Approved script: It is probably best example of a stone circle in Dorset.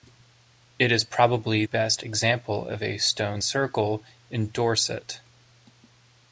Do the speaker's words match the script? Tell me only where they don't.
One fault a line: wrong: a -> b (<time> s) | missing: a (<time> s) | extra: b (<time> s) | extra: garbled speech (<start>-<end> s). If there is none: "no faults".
no faults